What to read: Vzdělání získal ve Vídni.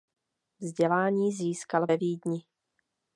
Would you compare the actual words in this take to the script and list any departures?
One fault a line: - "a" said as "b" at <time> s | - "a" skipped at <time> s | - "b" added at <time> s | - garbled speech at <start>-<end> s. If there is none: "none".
none